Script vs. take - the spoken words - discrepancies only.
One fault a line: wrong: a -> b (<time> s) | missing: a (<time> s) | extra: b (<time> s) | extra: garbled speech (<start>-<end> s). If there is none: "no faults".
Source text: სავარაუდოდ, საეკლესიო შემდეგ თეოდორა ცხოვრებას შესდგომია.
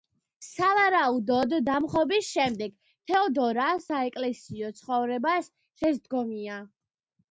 wrong: საეკლესიო -> დამხობის (1.7 s)
extra: საეკლესიო (3.9 s)